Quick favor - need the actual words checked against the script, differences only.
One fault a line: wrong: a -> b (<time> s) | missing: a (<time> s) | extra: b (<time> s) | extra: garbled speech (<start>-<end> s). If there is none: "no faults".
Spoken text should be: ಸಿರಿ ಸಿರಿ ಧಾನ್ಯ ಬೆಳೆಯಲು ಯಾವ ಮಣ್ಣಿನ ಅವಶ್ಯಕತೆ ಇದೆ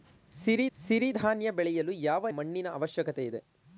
no faults